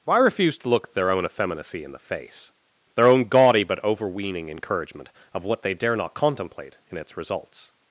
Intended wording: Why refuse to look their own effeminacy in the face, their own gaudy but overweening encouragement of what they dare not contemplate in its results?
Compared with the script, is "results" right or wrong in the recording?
right